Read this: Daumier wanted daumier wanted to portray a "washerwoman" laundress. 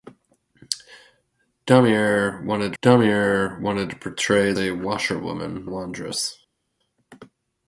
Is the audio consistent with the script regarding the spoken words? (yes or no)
yes